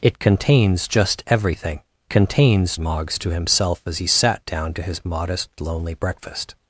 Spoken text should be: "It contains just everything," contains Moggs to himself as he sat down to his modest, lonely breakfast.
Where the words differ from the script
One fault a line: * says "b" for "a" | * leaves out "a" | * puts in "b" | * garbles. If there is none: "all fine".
all fine